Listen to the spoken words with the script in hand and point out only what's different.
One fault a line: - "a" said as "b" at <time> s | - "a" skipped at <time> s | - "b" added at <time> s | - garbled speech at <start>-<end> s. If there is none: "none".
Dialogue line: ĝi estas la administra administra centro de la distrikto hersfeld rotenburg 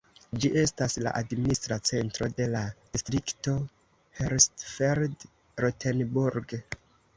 - "administra" skipped at 1.8 s